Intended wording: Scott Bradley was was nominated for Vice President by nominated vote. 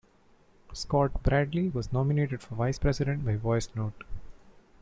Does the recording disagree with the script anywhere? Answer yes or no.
yes